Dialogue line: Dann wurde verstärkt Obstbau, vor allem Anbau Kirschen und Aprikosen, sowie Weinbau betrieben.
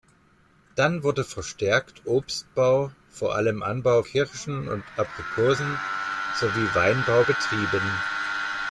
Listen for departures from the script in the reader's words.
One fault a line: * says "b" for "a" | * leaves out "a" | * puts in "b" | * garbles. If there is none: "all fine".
all fine